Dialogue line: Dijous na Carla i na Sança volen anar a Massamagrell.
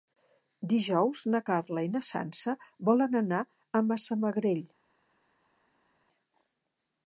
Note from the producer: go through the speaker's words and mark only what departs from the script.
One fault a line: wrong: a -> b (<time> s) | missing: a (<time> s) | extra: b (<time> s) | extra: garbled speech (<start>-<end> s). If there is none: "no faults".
no faults